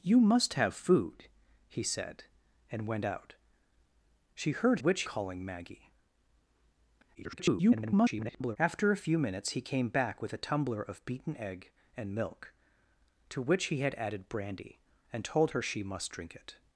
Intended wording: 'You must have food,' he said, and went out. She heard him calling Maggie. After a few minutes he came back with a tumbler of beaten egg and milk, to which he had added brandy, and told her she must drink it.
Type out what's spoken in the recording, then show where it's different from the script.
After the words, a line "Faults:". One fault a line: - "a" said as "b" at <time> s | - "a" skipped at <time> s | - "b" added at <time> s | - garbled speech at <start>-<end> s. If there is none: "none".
'You must have food,' he said, and went out. She heard which calling Maggie. [garbled] After a few minutes he came back with a tumbler of beaten egg and milk, to which he had added brandy, and told her she must drink it.
Faults:
- "him" said as "which" at 4.8 s
- garbled speech at 7.1-8.6 s